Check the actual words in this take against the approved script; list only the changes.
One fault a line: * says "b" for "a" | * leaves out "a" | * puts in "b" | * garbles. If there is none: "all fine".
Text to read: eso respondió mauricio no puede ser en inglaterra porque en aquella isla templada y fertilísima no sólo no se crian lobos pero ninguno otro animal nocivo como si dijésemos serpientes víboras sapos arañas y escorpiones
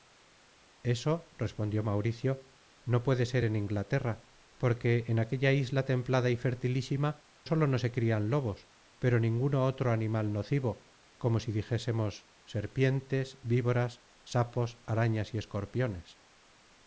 * leaves out "no"